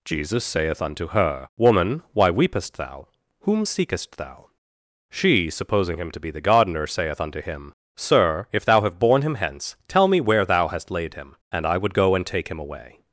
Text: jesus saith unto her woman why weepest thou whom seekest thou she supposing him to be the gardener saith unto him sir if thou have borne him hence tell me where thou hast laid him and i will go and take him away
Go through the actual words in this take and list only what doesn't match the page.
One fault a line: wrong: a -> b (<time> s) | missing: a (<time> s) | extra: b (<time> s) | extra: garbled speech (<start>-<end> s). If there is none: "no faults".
wrong: will -> would (11.8 s)